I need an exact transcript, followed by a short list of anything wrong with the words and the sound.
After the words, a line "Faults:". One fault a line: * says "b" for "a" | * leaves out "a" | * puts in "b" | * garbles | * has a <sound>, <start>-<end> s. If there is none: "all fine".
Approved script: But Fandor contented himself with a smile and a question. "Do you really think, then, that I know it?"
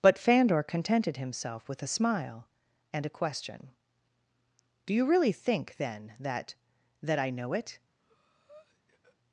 But Fandor contented himself with a smile and a question. "Do you really think, then, that that I know it?"
Faults:
* puts in "that"
* has a breath, 8.0-9.2 s